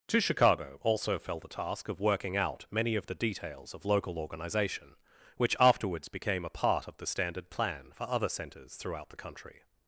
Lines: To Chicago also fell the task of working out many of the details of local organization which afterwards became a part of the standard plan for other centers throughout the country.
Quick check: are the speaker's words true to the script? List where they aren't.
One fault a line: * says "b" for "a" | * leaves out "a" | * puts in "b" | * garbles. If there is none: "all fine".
all fine